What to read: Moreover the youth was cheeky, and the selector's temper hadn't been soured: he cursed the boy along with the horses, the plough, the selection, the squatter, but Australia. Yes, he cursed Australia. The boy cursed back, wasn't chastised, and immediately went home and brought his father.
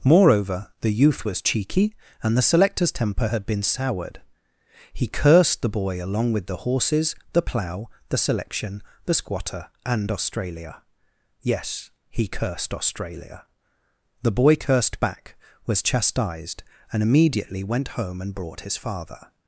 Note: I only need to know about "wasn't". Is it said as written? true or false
false